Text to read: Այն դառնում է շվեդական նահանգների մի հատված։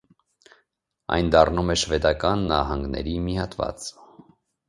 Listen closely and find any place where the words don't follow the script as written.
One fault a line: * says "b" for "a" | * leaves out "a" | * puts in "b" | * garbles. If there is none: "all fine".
all fine